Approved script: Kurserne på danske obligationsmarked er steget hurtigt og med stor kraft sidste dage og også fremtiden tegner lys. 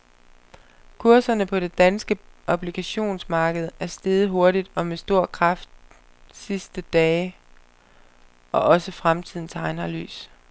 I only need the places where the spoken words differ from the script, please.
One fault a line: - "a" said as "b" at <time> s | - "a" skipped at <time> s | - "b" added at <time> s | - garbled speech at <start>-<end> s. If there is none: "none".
- "det" added at 1.6 s